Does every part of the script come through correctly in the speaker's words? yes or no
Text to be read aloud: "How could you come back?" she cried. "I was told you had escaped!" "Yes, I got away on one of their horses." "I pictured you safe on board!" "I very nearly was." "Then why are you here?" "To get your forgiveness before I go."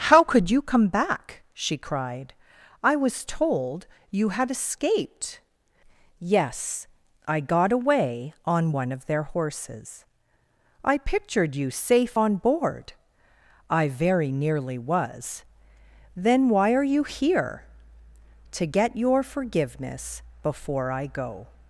yes